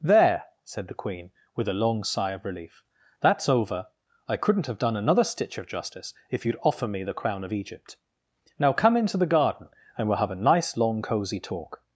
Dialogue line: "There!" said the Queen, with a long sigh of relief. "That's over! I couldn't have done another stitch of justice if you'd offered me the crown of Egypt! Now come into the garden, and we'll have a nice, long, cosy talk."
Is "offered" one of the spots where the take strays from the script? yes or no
yes